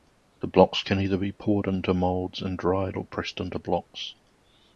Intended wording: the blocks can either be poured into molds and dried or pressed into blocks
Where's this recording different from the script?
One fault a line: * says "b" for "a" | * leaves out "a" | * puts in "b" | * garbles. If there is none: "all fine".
all fine